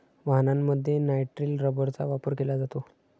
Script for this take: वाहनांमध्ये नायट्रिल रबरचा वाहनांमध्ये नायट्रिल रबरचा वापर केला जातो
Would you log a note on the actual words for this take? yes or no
yes